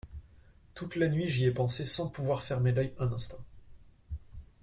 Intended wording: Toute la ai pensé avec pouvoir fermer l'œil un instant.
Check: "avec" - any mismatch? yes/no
yes